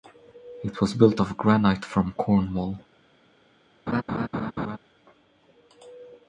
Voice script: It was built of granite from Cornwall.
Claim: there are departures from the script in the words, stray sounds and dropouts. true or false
true